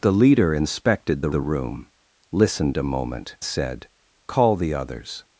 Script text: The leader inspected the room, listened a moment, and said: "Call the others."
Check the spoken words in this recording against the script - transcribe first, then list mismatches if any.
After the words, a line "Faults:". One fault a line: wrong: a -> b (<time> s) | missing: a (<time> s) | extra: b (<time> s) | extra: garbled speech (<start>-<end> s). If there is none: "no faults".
The leader inspected the the room, listened a moment, said: "Call the others."
Faults:
extra: the (1.3 s)
missing: and (3.4 s)